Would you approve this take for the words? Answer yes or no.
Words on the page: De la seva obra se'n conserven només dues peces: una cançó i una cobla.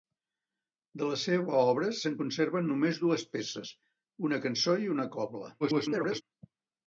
no